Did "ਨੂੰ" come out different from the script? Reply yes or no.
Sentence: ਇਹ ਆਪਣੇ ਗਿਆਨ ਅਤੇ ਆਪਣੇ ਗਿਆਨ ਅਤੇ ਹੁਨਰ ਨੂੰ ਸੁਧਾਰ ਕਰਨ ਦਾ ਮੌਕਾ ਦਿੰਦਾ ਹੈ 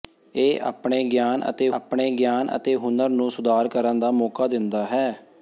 no